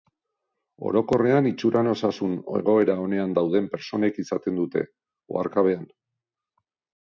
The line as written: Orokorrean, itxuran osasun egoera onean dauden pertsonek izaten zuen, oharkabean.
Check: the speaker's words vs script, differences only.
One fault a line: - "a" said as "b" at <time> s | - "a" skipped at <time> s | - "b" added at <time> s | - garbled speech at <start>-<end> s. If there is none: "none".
- "zuen" said as "dute" at 4.7 s